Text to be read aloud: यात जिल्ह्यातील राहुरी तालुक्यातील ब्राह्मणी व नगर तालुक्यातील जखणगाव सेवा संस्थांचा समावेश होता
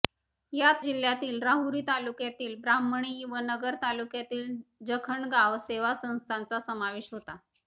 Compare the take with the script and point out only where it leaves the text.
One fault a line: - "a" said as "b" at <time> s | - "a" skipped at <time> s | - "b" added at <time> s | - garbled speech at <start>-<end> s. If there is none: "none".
none